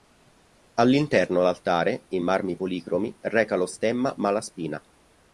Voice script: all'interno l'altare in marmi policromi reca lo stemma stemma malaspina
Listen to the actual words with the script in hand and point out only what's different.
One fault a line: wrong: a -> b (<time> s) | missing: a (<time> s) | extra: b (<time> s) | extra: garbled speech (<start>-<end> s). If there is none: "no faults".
missing: stemma (4.1 s)